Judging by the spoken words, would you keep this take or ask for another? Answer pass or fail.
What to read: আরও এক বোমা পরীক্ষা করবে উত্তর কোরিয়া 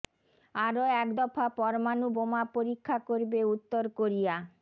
fail